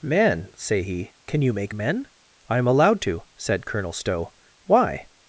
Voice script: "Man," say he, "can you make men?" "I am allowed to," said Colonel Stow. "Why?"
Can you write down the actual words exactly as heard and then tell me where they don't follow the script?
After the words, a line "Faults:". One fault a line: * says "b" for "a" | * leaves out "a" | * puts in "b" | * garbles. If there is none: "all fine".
"Man," say he, "can you make men?" "I am allowed to," said Colonel Stow. "Why?"
Faults:
all fine